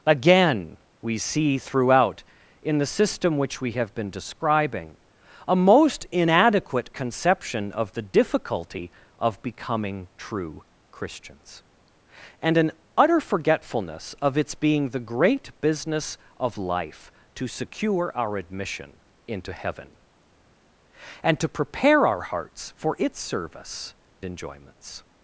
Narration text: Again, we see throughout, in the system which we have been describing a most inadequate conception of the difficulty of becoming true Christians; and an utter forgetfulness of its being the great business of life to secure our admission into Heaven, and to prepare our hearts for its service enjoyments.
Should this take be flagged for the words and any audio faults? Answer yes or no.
no